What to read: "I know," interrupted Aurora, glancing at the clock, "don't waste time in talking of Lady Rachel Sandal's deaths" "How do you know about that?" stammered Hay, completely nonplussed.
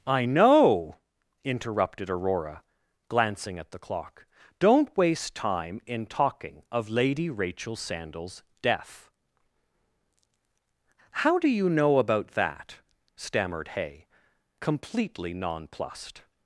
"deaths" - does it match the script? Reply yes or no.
no